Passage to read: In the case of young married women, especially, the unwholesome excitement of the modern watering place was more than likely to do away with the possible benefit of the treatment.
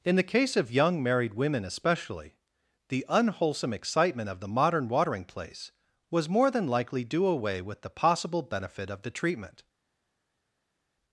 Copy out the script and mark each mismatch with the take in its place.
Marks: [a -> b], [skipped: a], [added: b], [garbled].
In the case of young married women, especially, the unwholesome excitement of the modern watering place was more than likely [skipped: to] do away with the possible benefit of the treatment.